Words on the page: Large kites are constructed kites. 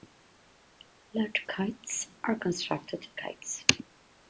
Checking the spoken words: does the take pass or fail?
pass